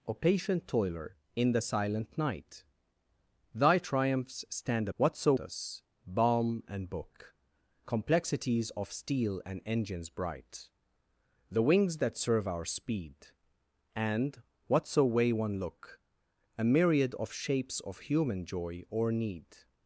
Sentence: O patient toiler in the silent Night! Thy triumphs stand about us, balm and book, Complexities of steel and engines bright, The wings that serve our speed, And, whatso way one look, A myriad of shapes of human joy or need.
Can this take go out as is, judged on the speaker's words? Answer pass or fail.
fail